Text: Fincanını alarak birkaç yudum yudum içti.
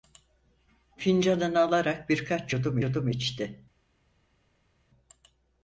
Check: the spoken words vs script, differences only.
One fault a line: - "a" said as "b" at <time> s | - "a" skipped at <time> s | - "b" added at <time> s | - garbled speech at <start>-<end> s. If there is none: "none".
none